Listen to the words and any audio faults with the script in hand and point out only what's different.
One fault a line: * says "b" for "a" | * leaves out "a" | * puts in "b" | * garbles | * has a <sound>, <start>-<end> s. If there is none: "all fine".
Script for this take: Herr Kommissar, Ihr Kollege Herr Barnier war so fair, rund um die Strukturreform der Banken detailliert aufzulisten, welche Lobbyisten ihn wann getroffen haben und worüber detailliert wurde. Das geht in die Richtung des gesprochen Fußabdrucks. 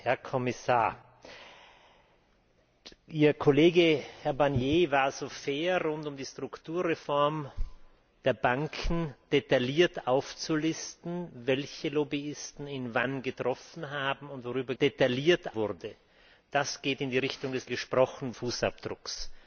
all fine